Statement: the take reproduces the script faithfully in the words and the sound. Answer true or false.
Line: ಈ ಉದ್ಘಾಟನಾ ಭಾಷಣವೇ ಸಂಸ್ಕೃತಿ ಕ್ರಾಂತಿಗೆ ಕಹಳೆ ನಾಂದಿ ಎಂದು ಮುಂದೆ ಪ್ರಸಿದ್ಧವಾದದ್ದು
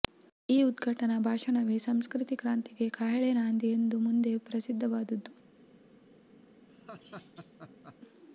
false